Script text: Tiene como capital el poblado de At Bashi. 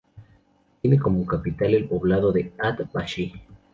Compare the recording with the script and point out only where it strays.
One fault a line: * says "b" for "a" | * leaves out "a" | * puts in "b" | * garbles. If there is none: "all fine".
all fine